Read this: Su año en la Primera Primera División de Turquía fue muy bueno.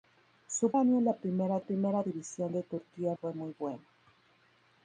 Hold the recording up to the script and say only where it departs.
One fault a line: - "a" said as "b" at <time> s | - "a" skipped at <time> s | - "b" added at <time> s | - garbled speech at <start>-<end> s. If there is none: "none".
none